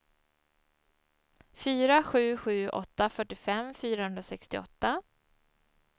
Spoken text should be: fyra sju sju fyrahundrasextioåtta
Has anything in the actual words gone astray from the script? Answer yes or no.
yes